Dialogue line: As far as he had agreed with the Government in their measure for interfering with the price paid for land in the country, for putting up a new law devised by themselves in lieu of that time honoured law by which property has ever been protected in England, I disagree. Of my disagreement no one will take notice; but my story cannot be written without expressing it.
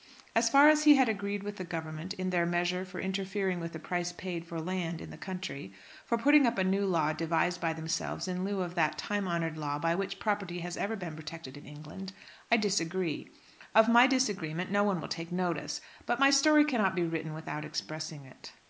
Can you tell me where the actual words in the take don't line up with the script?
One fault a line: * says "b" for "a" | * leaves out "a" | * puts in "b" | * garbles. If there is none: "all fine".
all fine